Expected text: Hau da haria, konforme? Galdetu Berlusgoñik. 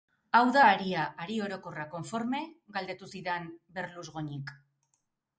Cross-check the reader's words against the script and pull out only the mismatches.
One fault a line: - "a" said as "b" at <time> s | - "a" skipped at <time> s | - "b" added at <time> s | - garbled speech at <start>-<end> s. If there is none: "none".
- "hari orokorra" added at 1.2 s
- "zidan" added at 3.1 s